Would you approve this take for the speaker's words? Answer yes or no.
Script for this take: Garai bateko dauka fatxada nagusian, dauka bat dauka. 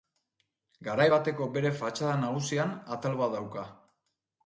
no